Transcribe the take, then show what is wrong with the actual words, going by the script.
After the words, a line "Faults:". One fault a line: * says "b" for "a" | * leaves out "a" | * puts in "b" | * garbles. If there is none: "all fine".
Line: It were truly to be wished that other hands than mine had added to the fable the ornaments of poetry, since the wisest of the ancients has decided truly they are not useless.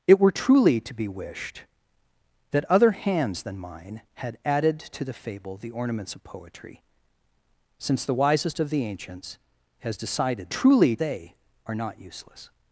It were truly to be wished that other hands than mine had added to the fable the ornaments of poetry, since the wisest of the ancients has decided truly they are not useless.
Faults:
all fine